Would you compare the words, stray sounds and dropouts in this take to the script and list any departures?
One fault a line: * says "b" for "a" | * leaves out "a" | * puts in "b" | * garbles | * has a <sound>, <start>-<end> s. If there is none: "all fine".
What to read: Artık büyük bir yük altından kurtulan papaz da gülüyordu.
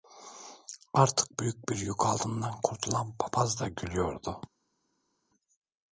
all fine